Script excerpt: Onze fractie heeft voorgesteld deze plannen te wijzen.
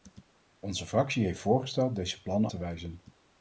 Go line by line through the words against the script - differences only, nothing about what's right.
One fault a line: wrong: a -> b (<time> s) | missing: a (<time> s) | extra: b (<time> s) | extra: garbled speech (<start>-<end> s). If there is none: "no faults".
no faults